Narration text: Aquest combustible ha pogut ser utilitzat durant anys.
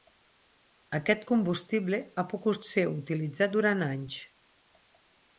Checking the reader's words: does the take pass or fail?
pass